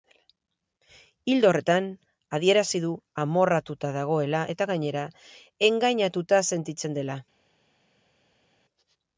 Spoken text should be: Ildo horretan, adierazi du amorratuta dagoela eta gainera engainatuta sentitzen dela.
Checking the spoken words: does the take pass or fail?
pass